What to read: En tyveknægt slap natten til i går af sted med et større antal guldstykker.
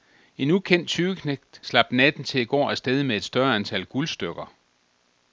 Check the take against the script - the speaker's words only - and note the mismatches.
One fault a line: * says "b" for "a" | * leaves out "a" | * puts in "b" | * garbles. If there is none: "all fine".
* puts in "ukendt"